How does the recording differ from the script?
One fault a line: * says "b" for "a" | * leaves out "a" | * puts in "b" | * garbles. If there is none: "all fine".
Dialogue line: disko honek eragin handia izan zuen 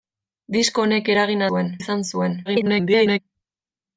* says "zuen" for "handia"
* garbles